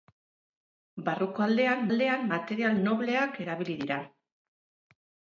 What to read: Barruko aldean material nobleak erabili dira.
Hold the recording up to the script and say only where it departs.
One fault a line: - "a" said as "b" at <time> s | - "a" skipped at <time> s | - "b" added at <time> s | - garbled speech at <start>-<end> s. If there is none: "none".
- "aldean" added at 1.9 s